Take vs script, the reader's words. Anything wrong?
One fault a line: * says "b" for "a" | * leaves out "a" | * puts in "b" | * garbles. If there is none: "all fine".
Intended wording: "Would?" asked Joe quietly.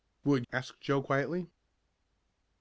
all fine